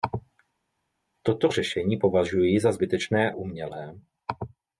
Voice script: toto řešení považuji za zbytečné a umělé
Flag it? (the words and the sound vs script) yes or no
yes